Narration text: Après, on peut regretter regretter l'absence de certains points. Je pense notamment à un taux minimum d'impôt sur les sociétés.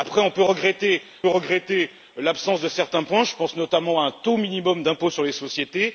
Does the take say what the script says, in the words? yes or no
yes